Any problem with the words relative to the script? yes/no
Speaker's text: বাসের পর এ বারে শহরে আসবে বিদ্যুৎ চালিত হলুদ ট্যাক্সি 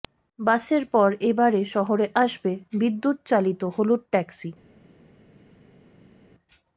no